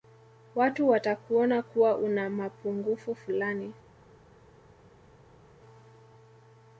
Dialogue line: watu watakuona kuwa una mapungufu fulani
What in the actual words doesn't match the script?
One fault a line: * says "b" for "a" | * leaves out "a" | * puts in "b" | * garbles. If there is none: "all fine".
all fine